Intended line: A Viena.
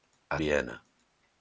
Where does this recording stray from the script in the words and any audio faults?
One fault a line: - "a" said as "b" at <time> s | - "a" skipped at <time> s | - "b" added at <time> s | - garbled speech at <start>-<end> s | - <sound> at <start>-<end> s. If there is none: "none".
none